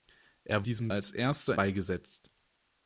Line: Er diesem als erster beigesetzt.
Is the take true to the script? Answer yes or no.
yes